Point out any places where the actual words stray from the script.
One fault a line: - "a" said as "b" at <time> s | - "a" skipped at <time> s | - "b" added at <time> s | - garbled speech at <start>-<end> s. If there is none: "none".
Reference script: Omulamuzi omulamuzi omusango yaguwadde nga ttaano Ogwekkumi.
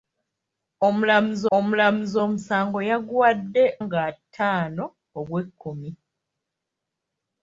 none